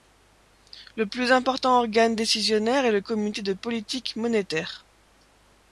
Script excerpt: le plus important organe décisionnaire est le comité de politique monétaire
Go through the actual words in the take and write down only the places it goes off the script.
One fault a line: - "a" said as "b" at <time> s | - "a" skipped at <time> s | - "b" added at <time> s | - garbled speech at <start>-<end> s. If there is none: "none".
none